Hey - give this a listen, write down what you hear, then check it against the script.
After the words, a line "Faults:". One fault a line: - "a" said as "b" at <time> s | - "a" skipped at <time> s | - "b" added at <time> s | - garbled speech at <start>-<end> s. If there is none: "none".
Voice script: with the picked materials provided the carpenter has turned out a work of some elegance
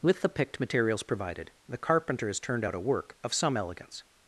with the picked materials provided the carpenter has turned out a work of some elegance
Faults:
none